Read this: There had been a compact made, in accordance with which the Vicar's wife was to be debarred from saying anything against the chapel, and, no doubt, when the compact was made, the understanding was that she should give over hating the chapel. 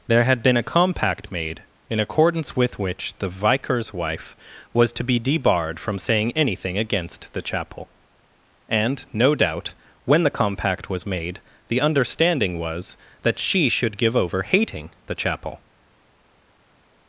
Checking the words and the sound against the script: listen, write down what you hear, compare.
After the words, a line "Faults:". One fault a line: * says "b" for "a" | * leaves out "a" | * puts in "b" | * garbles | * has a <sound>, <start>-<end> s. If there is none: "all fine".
There had been a compact made, in accordance with which the Vicar's wife was to be debarred from saying anything against the chapel, and, no doubt, when the compact was made, the understanding was that she should give over hating the chapel.
Faults:
all fine